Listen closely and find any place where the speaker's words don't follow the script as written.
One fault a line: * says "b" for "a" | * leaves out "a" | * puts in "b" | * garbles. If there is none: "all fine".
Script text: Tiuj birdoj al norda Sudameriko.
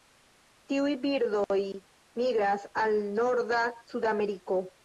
* puts in "migras"